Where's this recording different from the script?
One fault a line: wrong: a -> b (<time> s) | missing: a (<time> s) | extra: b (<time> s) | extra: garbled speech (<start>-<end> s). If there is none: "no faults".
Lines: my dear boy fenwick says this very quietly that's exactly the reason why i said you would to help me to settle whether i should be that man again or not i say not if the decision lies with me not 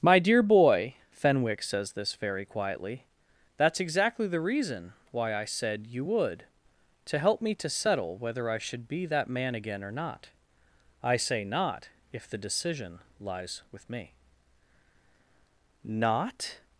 no faults